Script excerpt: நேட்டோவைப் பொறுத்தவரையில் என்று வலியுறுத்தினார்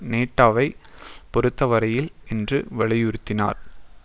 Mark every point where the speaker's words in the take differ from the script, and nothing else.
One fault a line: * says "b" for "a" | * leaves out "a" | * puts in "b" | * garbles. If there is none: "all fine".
all fine